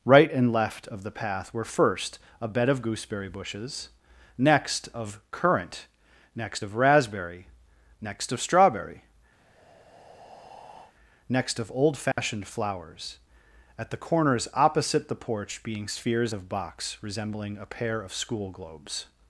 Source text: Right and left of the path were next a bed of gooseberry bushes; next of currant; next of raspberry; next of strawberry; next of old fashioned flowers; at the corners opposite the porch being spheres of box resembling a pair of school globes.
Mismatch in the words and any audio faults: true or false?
true